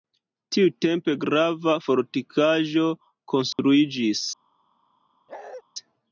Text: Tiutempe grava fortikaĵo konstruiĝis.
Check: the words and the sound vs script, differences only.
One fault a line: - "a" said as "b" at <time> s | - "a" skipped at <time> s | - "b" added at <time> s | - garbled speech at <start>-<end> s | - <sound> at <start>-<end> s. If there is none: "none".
- dropout at 3.5-3.6 s
- bark at 5.3-5.6 s